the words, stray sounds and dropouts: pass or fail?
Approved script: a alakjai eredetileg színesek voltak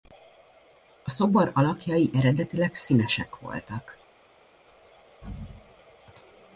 fail